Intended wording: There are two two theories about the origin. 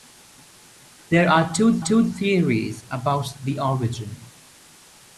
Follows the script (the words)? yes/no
yes